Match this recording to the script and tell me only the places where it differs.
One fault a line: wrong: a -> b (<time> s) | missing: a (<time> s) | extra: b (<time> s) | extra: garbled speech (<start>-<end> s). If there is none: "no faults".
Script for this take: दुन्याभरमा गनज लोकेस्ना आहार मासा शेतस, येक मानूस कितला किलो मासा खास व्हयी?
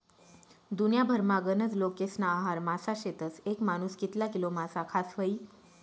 no faults